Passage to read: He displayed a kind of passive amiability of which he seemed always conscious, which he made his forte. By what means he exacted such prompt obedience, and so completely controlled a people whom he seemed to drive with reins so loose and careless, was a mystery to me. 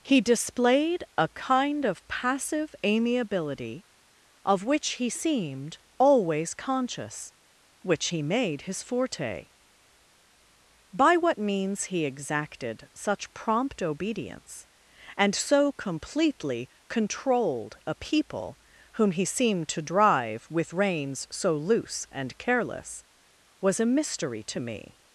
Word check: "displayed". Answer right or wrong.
right